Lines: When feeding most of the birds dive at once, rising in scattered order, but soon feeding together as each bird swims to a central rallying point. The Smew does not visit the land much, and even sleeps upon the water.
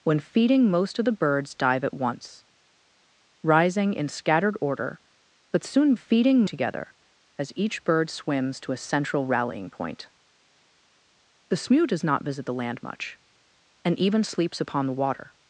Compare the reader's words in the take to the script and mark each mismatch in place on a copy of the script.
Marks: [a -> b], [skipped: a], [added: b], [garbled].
When feeding most of the birds dive at once, rising in scattered order, but soon feeding together as each bird swims to a central rallying point. The Smew does not visit the land much, and even sleeps upon the water.